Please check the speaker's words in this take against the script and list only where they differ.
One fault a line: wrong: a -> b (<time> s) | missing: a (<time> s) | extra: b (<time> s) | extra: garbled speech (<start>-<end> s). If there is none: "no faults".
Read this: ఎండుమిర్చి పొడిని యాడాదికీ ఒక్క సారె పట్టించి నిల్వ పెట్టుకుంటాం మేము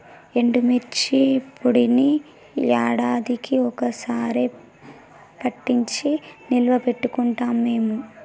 no faults